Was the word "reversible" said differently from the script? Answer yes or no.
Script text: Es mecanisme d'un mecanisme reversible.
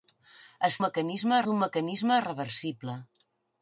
no